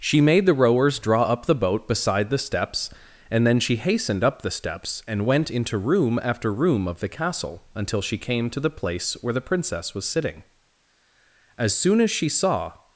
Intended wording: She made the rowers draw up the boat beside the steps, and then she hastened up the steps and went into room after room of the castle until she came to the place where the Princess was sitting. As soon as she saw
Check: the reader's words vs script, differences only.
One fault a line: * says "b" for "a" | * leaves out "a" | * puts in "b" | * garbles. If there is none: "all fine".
all fine